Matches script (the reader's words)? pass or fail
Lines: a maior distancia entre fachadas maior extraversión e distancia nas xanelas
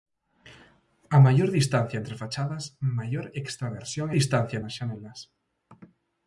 pass